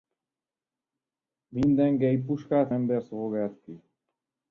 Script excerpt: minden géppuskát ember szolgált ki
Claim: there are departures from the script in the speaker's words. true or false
false